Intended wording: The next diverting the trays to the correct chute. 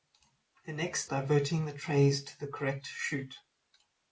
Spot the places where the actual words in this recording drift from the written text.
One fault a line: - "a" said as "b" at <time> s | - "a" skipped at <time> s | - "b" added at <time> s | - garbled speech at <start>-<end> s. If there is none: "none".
none